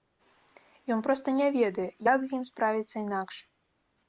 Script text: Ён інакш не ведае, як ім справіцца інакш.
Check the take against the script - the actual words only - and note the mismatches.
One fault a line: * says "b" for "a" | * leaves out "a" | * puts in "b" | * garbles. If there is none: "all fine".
* says "проста" for "інакш"
* puts in "з"